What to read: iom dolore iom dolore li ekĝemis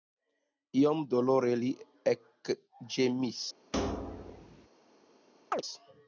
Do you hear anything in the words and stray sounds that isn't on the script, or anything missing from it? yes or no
yes